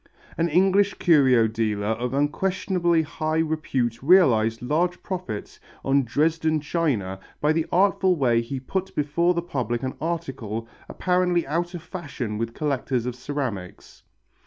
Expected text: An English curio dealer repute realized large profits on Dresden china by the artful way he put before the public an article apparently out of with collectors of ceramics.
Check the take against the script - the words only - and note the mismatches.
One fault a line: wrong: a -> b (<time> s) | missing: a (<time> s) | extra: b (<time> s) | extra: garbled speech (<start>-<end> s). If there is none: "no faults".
extra: of unquestionably high (1.9 s)
extra: fashion (11.8 s)